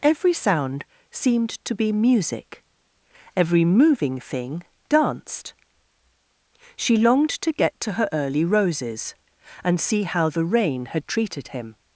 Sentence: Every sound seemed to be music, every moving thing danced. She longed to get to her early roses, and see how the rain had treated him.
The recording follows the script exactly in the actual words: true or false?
true